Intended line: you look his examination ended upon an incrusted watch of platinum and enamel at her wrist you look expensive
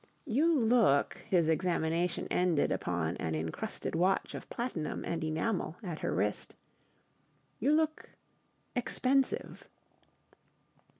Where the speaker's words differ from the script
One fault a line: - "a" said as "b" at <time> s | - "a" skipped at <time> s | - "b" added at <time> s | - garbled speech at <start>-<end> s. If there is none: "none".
none